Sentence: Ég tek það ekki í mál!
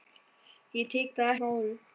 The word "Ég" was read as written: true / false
true